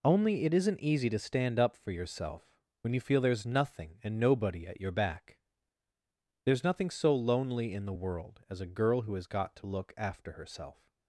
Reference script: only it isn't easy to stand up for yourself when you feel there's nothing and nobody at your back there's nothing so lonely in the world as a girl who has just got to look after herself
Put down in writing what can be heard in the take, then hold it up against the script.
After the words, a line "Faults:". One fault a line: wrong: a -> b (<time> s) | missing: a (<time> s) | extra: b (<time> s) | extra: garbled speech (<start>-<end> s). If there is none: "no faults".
only it isn't easy to stand up for yourself when you feel there's nothing and nobody at your back there's nothing so lonely in the world as a girl who has got to look after herself
Faults:
missing: just (9.3 s)